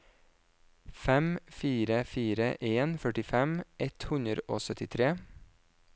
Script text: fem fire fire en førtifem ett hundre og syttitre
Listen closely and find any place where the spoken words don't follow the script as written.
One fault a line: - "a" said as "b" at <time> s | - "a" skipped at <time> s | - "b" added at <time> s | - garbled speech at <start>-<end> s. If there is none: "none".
none